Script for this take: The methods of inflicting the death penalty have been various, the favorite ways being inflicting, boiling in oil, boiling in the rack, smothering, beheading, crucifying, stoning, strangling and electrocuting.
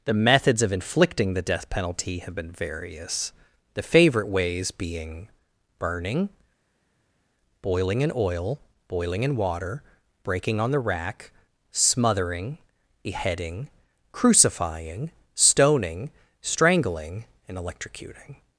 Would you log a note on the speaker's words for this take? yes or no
yes